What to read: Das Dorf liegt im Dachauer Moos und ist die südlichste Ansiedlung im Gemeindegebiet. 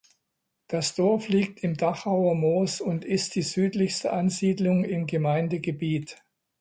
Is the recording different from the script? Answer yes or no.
no